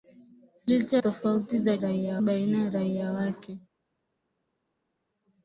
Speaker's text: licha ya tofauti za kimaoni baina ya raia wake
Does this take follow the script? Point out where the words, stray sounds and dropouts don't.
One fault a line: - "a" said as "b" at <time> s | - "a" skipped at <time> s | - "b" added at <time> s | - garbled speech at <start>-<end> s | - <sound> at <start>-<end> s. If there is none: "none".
- "ya" skipped at 1.0 s
- "kimaoni" said as "raia" at 1.8 s